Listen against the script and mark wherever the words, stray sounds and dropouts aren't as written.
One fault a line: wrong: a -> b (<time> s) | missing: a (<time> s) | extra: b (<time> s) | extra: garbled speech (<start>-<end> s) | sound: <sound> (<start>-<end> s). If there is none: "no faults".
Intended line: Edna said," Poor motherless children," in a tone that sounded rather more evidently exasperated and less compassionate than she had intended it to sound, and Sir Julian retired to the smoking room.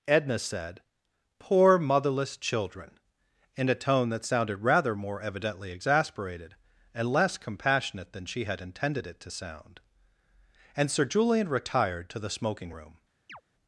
sound: chirp (13.3-13.4 s)